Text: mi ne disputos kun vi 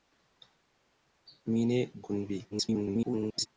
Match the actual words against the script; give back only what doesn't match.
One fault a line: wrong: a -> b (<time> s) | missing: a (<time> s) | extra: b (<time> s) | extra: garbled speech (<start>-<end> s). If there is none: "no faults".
missing: disputos (1.8 s)
extra: garbled speech (2.5-3.5 s)